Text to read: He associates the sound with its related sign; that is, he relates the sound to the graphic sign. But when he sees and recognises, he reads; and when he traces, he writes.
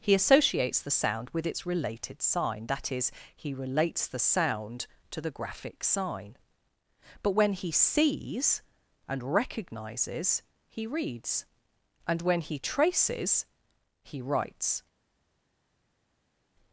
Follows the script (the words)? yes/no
yes